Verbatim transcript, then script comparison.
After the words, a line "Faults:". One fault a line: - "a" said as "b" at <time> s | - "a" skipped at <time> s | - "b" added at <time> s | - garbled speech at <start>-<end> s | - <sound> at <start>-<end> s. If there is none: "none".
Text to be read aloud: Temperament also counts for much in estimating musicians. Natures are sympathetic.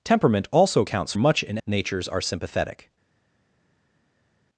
Temperament also counts much in. Natures are sympathetic.
Faults:
- "for" skipped at 1.1 s
- "estimating musicians" skipped at 1.6 s